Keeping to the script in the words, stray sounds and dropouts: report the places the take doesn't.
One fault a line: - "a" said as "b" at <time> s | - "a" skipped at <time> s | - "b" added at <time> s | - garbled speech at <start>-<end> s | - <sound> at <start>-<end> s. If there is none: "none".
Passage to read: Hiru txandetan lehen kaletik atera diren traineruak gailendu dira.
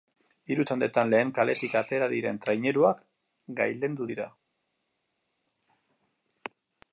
none